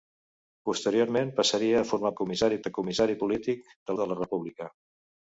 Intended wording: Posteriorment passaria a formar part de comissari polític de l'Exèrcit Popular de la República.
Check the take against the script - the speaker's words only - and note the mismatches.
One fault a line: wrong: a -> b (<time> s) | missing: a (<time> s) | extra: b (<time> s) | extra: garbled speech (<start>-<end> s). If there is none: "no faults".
wrong: part -> comissari (2.2 s)
missing: l'Exèrcit Popular (4.0 s)